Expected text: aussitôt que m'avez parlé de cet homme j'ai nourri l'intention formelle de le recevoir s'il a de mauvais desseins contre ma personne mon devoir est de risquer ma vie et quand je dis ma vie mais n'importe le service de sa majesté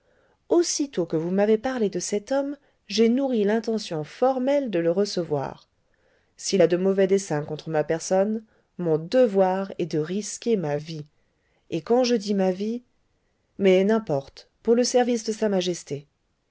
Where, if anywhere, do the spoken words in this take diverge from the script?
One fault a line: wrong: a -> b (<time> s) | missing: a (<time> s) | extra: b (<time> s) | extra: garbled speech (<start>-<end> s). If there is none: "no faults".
extra: vous (1.1 s)
extra: pour (14.6 s)